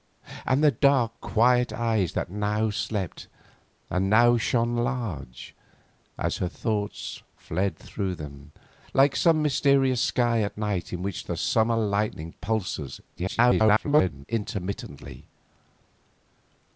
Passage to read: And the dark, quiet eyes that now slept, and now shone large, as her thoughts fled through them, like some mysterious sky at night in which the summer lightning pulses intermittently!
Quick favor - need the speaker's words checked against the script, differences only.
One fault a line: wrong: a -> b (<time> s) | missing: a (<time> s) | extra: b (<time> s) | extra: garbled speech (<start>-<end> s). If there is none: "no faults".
extra: garbled speech (13.1-14.3 s)